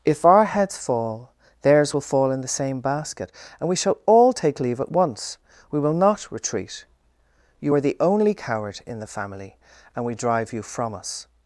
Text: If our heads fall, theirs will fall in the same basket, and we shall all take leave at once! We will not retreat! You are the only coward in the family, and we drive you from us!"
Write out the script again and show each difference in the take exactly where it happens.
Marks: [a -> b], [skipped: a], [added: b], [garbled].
If our heads fall, theirs will fall in the same basket, and we shall all take leave at once! We will not retreat! You are the only coward in the family, and we drive you from us!"